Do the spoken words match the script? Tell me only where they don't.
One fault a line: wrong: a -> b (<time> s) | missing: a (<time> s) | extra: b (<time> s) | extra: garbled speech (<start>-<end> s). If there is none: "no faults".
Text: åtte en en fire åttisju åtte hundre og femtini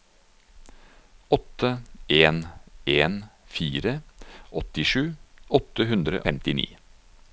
missing: og (6.2 s)